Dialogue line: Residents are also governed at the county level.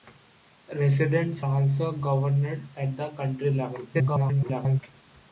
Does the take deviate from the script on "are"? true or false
true